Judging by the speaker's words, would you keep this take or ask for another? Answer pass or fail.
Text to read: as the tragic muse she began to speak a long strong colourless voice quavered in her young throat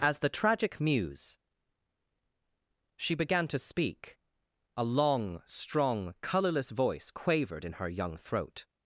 pass